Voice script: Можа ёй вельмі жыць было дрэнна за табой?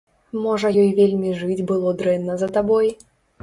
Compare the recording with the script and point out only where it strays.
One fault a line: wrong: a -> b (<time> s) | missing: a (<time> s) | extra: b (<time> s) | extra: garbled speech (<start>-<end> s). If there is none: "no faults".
no faults